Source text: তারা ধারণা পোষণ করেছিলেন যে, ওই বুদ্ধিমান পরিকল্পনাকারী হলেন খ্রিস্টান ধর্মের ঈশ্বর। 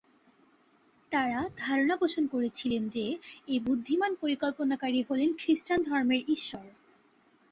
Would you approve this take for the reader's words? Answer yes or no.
no